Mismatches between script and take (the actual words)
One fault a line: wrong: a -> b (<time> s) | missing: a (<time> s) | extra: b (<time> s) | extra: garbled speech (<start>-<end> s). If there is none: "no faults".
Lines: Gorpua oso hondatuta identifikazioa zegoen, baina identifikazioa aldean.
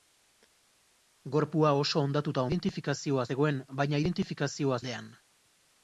no faults